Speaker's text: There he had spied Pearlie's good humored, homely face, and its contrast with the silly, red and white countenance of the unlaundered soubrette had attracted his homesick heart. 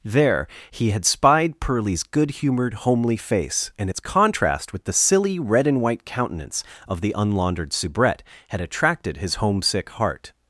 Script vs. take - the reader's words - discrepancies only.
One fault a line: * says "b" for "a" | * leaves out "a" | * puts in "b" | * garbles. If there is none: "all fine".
all fine